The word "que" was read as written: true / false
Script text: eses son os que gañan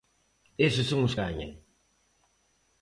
false